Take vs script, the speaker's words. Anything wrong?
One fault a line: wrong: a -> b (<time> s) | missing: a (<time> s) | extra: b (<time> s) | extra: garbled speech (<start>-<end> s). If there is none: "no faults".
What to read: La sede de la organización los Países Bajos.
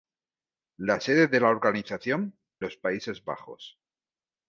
no faults